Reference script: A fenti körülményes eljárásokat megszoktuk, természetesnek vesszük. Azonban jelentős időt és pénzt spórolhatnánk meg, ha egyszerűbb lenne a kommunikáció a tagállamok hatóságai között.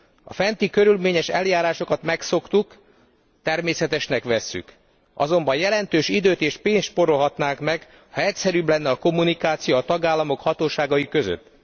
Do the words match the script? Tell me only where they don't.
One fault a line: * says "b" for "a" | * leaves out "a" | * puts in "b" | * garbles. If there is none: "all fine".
all fine